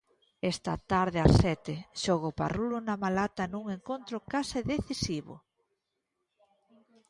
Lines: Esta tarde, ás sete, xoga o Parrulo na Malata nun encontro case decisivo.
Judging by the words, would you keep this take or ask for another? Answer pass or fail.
pass